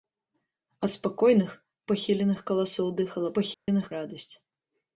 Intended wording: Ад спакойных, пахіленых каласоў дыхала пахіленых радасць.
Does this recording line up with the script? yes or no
yes